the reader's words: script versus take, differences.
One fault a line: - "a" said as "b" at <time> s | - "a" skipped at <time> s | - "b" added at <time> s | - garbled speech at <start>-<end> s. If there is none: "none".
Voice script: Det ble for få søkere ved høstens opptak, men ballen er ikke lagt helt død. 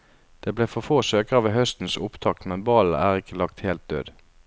none